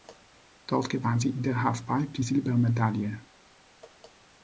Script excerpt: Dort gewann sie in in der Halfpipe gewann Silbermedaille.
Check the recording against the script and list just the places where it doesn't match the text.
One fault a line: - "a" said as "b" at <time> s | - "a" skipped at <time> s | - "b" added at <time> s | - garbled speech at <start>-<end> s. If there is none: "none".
- "in" skipped at 1.4 s
- "gewann" said as "die" at 2.1 s